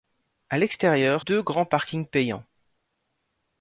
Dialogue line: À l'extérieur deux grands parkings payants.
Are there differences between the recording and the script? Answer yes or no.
no